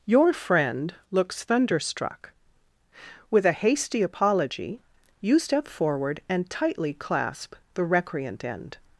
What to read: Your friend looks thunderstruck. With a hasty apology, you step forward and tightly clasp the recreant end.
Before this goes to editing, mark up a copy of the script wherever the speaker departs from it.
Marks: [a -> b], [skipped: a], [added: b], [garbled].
Your friend looks thunderstruck. With a hasty apology, you step forward and tightly clasp the recreant end.